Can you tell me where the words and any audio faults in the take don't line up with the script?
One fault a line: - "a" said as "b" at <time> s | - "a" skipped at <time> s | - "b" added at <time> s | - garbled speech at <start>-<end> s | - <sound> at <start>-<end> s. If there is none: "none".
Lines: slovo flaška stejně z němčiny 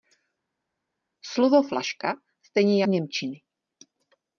none